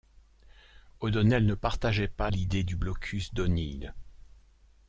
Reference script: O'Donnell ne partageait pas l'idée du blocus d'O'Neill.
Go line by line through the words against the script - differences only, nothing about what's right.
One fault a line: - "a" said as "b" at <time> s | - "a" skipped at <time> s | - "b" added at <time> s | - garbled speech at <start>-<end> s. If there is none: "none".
none